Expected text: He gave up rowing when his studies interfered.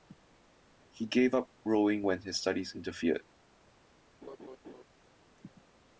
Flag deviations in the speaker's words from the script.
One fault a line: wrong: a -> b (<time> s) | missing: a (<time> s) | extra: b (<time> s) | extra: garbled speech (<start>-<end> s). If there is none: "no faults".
no faults